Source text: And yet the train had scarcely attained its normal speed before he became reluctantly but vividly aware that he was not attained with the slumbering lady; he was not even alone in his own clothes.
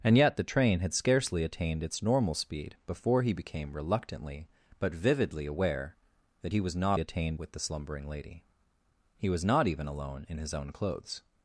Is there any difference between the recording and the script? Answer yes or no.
no